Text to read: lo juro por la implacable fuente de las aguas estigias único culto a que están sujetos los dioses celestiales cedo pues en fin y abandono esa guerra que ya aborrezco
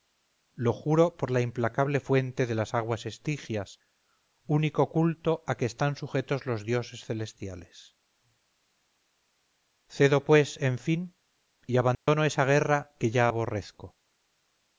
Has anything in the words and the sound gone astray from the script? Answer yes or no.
yes